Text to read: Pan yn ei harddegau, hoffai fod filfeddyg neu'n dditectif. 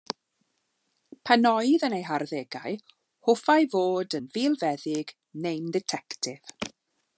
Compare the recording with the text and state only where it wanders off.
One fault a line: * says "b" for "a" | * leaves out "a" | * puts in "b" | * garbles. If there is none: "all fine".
* puts in "oedd"
* puts in "yn"